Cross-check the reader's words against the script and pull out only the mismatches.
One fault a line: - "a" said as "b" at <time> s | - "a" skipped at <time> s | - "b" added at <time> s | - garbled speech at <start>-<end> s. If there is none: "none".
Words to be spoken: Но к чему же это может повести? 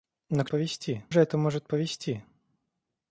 - "чему" said as "повести" at 0.5 s